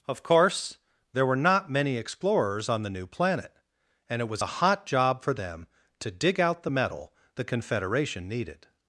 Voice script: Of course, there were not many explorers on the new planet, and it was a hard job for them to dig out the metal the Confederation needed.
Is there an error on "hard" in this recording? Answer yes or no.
yes